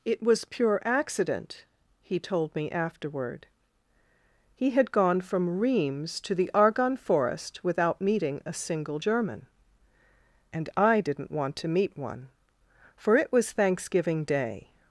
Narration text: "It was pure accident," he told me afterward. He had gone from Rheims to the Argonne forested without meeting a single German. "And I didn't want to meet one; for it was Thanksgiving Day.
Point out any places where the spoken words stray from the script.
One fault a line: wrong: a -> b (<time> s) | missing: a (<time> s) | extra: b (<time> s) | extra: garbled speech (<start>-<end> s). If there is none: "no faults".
wrong: forested -> forest (7.0 s)